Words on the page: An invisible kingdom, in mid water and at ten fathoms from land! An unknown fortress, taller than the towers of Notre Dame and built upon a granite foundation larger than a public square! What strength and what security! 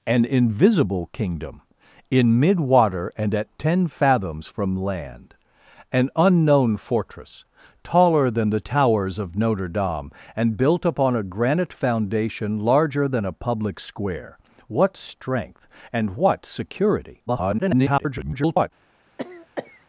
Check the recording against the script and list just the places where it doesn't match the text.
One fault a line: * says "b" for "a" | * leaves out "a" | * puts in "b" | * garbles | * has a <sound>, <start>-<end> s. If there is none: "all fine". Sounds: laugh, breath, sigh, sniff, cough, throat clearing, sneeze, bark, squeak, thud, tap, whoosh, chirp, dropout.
* garbles
* has a cough, 19.2-19.9 s